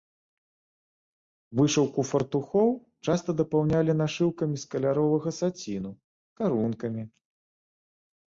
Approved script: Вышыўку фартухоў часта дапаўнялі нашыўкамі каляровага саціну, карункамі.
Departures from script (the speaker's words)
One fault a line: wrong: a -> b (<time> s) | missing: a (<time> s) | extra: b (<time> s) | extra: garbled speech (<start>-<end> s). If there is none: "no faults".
extra: з (4.6 s)